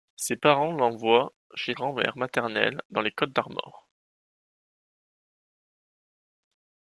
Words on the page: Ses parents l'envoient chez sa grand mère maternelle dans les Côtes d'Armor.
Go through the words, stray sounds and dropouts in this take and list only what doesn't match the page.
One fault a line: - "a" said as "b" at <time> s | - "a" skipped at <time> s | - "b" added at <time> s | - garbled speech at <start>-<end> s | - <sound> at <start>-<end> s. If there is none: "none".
- "sa" skipped at 1.8 s